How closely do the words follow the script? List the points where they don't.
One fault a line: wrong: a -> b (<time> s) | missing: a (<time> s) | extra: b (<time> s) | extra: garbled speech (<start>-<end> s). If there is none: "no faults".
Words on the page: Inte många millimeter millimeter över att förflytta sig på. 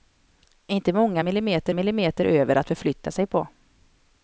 no faults